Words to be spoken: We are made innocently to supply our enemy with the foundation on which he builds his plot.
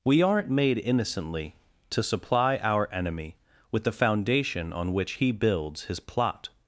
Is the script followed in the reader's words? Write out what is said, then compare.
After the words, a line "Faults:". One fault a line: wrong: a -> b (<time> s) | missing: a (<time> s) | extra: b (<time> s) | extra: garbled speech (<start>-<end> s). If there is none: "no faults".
We aren't made innocently to supply our enemy with the foundation on which he builds his plot.
Faults:
wrong: are -> aren't (0.2 s)